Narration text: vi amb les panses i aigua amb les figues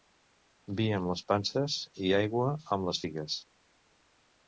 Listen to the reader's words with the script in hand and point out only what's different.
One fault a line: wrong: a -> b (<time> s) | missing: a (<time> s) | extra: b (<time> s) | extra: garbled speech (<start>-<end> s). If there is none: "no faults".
no faults